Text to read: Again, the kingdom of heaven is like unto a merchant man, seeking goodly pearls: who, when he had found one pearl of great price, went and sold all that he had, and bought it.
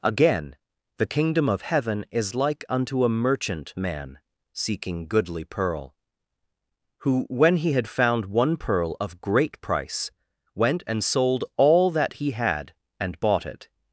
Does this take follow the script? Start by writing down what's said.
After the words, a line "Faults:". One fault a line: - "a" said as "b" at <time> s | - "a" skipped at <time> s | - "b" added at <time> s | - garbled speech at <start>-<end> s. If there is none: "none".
Again, the kingdom of heaven is like unto a merchant man, seeking goodly pearl: who, when he had found one pearl of great price, went and sold all that he had, and bought it.
Faults:
- "pearls" said as "pearl" at 5.4 s